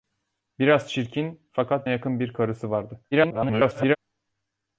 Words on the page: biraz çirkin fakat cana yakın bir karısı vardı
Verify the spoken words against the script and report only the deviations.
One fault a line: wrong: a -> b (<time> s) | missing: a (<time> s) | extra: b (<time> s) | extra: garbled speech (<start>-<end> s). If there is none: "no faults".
missing: cana (1.9 s)
extra: garbled speech (3.1-4.0 s)